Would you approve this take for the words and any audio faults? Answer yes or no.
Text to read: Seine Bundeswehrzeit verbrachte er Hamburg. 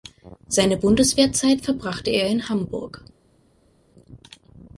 no